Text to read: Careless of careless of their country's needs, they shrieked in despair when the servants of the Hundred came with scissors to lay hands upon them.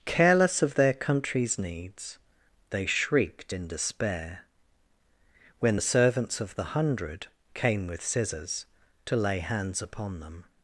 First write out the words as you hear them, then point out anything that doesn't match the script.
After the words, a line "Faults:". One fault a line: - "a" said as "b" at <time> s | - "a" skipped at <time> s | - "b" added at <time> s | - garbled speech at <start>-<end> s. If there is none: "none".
Careless of their country's needs, they shrieked in despair when the servants of the Hundred came with scissors to lay hands upon them.
Faults:
- "careless of" skipped at 0.8 s